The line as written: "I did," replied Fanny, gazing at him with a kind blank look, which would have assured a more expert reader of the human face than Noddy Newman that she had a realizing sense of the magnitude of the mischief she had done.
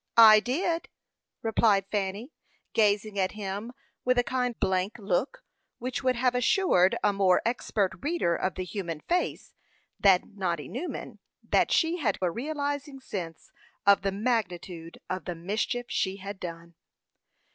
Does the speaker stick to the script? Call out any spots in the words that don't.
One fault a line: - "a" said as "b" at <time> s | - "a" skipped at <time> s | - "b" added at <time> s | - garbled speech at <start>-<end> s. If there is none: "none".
none